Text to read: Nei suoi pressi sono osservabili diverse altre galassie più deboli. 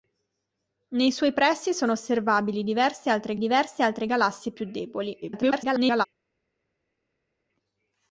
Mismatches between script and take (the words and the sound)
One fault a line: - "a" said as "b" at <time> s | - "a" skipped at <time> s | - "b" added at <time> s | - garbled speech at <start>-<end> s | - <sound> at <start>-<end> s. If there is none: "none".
- "diverse altre" added at 3.4 s
- garbled speech at 5.2-6.1 s